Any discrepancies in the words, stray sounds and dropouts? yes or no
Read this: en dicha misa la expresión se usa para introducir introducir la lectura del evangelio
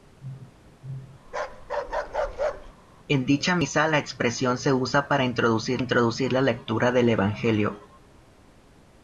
yes